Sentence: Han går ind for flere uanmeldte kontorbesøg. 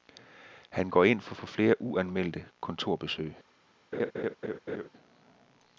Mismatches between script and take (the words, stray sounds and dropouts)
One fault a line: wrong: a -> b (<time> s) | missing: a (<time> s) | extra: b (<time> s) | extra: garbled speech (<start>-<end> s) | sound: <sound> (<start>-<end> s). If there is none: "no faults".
extra: for (1.3 s)
sound: laugh (3.9-4.9 s)